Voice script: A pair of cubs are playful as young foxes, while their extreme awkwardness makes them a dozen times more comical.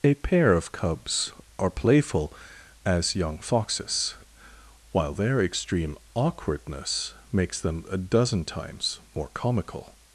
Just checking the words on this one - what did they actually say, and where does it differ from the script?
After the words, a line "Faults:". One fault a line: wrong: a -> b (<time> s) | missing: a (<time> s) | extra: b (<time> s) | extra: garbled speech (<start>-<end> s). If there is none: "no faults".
A pair of cubs are playful as young foxes, while their extreme awkwardness makes them a dozen times more comical.
Faults:
no faults